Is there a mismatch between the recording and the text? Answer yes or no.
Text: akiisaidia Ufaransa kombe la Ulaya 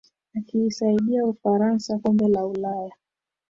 no